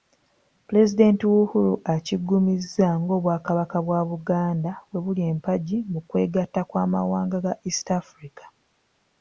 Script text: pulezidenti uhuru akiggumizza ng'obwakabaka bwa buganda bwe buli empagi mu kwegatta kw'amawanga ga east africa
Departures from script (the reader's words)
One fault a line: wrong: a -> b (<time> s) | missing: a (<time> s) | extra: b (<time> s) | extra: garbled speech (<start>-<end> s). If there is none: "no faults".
no faults